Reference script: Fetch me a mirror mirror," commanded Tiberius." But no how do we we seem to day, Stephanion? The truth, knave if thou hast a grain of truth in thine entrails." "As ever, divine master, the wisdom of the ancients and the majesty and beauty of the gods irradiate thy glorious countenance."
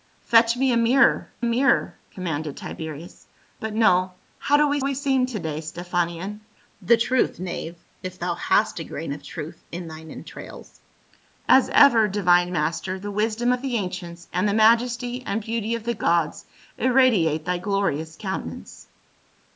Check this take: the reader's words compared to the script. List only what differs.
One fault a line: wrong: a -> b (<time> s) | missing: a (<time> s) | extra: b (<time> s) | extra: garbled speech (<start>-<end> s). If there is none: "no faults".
no faults